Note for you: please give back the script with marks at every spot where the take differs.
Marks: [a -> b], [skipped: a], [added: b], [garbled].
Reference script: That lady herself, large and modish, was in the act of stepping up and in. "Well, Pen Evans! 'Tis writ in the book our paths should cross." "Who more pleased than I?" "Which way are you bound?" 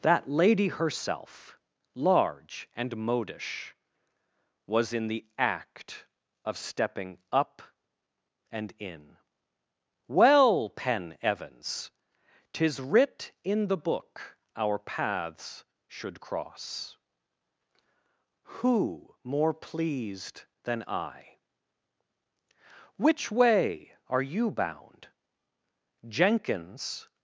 That lady herself, large and modish, was in the act of stepping up and in. "Well, Pen Evans! 'Tis writ in the book our paths should cross." "Who more pleased than I?" "Which way are you bound?" [added: Jenkins]